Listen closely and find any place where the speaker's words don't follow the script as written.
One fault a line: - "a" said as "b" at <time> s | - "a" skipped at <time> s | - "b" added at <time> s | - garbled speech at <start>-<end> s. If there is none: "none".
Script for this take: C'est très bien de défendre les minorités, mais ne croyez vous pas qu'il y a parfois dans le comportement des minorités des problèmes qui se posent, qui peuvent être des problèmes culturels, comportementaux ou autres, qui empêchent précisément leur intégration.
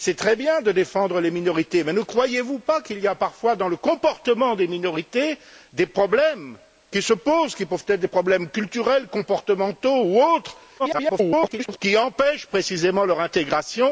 - garbled speech at 10.8-11.8 s